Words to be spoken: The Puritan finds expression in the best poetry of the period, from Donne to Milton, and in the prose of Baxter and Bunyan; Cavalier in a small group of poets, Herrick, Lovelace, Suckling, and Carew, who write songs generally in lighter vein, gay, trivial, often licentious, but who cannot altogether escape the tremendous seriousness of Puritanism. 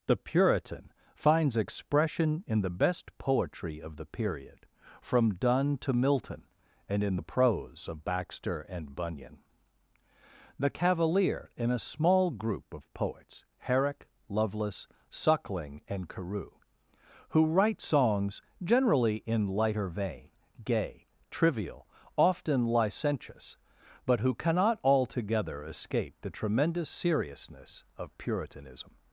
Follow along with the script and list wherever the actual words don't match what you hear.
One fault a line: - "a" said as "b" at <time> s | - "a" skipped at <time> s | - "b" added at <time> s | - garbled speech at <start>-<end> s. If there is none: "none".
- "the" added at 10.6 s